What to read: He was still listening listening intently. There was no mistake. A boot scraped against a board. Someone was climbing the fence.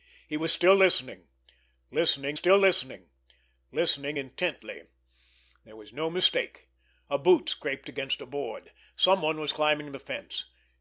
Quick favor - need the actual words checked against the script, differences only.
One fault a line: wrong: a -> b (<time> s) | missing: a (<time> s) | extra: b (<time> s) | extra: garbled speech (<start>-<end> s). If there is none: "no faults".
extra: still listening listening (2.3 s)